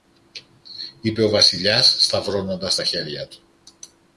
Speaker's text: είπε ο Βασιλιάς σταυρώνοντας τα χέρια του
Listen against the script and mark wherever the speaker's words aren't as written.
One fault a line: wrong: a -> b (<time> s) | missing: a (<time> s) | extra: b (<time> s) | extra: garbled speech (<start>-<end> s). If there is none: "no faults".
no faults